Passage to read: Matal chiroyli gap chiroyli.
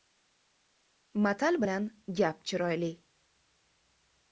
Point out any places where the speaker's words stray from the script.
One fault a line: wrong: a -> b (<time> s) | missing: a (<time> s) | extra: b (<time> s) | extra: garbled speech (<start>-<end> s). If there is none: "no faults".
wrong: chiroyli -> bilan (1.6 s)